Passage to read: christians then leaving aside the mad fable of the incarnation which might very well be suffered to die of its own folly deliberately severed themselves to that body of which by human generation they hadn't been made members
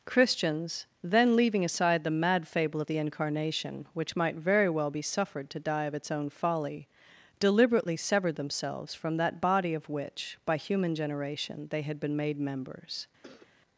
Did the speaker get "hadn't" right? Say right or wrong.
wrong